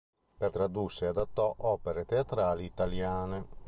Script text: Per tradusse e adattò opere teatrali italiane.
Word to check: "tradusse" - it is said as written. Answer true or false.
true